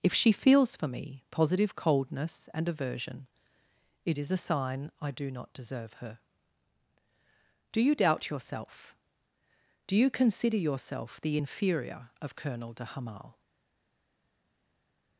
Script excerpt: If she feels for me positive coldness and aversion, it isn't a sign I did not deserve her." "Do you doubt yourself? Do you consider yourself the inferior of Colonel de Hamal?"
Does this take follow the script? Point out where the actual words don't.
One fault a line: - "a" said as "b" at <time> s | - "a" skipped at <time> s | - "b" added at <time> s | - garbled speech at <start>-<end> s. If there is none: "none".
- "isn't" said as "is" at 4.2 s
- "did" said as "do" at 5.1 s